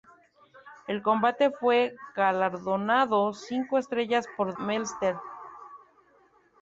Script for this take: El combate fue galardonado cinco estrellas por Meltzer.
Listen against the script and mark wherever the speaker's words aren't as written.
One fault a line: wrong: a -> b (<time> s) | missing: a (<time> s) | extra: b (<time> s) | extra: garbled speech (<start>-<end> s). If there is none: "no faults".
no faults